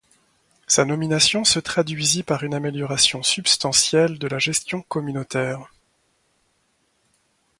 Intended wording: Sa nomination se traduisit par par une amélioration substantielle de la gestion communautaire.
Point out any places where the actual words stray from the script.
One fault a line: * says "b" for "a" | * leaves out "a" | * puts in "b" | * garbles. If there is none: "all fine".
* leaves out "par"